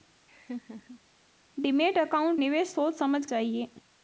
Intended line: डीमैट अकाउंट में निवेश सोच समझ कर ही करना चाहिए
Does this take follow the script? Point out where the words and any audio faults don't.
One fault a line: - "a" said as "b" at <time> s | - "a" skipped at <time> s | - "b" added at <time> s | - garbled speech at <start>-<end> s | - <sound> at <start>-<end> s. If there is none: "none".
- laugh at 0.3-1.0 s
- "में" skipped at 2.4 s
- "कर ही करना" skipped at 3.2 s